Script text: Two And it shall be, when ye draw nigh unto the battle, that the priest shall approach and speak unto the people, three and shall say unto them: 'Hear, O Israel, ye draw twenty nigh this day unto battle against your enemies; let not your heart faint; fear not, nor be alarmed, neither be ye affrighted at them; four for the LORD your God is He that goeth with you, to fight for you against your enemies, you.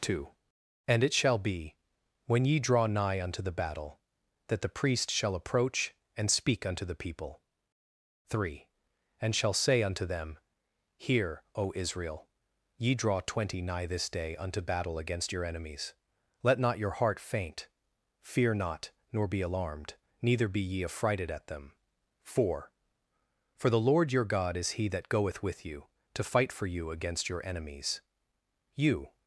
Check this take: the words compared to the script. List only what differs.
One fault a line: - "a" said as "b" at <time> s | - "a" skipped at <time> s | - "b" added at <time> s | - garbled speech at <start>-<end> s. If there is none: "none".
none